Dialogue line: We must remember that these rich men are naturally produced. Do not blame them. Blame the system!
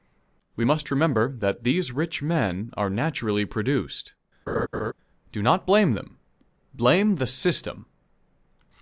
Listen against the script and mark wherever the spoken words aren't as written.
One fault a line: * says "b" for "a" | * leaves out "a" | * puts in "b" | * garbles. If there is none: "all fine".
all fine